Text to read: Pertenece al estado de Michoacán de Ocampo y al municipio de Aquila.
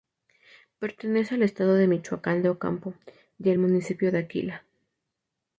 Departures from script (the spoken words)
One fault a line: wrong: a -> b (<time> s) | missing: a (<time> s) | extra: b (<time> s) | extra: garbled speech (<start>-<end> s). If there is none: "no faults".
no faults